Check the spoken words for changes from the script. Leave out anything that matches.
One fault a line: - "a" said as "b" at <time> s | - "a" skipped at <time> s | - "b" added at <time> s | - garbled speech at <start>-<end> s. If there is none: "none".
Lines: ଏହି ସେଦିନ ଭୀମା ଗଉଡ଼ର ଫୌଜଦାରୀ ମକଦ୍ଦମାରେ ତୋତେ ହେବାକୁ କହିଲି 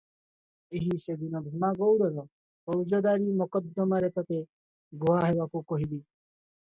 - "ଗୁହା" added at 4.9 s